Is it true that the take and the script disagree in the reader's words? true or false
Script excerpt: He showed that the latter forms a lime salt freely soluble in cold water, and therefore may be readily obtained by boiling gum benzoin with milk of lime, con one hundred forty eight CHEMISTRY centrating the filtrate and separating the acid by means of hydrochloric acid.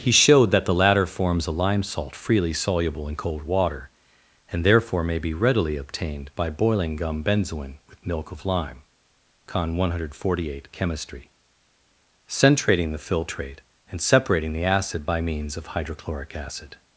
false